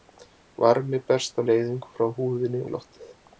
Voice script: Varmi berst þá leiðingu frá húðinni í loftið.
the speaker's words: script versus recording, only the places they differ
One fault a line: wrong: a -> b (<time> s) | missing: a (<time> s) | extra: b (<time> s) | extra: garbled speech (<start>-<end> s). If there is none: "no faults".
no faults